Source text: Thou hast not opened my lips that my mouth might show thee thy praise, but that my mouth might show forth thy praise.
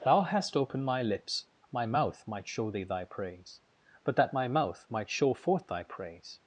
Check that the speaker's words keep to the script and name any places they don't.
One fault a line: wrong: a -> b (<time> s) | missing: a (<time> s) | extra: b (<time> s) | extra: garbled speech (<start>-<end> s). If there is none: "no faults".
missing: not (0.6 s)
missing: that (1.4 s)